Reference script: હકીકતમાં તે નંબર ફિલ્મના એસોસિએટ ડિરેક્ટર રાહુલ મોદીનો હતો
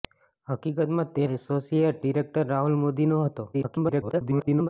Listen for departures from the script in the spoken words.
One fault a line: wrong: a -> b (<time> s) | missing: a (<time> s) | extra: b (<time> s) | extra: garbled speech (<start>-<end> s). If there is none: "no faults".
missing: નંબર ફિલ્મના (1.3 s)
extra: garbled speech (3.5-4.7 s)